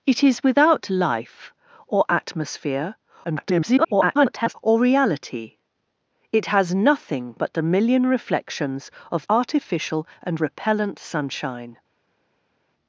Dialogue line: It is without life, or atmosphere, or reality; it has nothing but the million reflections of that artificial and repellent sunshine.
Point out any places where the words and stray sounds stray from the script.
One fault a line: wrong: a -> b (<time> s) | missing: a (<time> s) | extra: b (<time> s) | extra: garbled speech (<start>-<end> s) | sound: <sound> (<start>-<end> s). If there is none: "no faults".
extra: garbled speech (3.2-4.5 s)
missing: that (9.3 s)